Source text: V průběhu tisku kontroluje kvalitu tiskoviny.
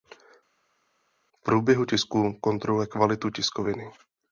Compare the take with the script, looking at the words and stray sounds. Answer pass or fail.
pass